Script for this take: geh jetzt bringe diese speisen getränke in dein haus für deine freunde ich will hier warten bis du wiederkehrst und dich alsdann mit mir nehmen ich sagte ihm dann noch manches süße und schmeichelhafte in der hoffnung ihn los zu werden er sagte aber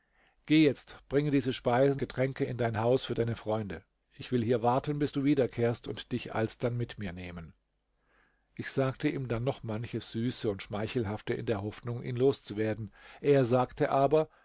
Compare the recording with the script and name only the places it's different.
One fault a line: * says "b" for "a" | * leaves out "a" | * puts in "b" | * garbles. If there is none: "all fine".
all fine